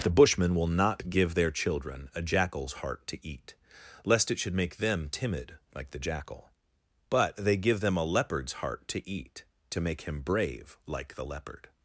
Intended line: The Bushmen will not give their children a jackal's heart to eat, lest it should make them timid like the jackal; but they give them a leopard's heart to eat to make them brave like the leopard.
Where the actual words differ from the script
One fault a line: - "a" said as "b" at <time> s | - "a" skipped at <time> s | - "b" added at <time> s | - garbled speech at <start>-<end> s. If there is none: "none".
- "them" said as "him" at 10.0 s